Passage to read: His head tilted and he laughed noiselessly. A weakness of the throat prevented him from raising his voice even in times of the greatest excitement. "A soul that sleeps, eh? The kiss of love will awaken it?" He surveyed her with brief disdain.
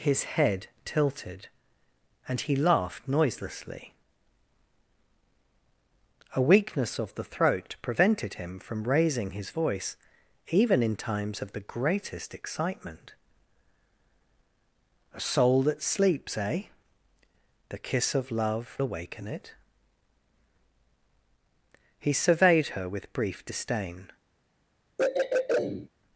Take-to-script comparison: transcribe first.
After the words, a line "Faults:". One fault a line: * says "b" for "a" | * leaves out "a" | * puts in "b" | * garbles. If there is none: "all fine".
His head tilted and he laughed noiselessly. A weakness of the throat prevented him from raising his voice even in times of the greatest excitement. "A soul that sleeps, eh? The kiss of love awaken it?" He surveyed her with brief disdain.
Faults:
* leaves out "will"